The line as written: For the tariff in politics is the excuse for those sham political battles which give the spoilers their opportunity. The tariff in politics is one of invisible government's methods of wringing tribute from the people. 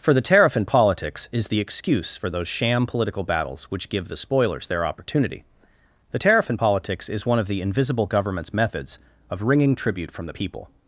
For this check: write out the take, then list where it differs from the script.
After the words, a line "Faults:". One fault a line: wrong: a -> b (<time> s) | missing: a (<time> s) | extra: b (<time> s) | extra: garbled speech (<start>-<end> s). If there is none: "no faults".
For the tariff in politics is the excuse for those sham political battles which give the spoilers their opportunity. The tariff in politics is one of the invisible government's methods of wringing tribute from the people.
Faults:
extra: the (7.5 s)